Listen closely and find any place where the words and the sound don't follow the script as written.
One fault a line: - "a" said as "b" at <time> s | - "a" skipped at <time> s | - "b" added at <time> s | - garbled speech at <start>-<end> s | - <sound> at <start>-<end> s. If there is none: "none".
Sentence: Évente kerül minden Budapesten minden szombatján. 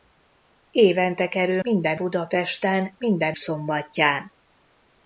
none